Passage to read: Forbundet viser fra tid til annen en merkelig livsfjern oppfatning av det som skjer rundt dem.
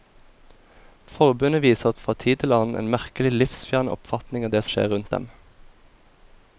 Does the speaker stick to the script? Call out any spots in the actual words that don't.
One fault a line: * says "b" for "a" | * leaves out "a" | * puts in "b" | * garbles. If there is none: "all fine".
* leaves out "som"